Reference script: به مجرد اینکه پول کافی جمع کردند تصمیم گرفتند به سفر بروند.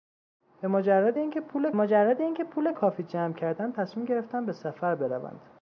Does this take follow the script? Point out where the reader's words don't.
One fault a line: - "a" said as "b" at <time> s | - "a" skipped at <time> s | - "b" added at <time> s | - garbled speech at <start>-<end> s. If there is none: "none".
- "مجرد اینکه پول" added at 1.7 s